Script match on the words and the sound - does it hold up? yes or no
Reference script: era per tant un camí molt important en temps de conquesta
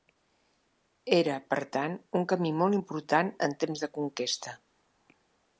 yes